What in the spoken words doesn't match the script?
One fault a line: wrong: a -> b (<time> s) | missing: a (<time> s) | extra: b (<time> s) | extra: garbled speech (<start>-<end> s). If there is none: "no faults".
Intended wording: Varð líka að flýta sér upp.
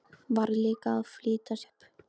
missing: sér (1.6 s)